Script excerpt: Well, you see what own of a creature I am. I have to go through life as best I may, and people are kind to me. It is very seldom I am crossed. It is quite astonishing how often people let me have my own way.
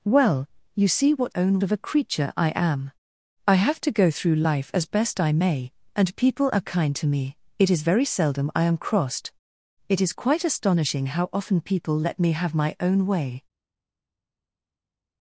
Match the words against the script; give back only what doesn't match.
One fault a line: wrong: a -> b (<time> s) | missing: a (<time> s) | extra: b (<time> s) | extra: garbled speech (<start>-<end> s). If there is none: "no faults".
no faults